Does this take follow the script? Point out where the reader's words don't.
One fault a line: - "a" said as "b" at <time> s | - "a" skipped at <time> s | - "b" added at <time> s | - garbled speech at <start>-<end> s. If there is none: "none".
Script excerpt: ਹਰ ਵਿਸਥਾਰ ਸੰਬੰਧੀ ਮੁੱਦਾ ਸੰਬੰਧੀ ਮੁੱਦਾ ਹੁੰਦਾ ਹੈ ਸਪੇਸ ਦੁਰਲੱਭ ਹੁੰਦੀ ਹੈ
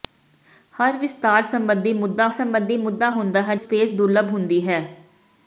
none